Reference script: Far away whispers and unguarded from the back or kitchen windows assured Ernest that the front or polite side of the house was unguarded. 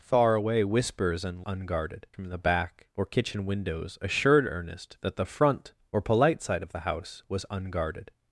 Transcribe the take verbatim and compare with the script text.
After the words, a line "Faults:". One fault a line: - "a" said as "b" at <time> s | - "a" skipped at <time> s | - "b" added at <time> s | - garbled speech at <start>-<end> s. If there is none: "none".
Far away whispers and unguarded from the back or kitchen windows assured Ernest that the front or polite side of the house was unguarded.
Faults:
none